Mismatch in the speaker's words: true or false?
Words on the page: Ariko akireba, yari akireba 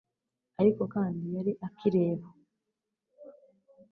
true